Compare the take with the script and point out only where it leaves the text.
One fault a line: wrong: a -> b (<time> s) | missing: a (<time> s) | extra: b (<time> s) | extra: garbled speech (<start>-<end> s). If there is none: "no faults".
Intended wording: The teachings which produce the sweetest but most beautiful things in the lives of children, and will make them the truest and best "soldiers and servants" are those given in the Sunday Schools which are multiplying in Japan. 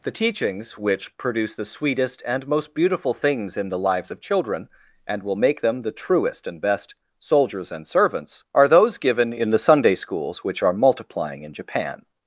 wrong: but -> and (2.2 s)